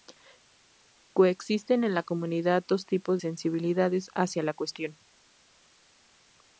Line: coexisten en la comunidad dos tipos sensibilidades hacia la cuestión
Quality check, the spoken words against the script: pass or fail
pass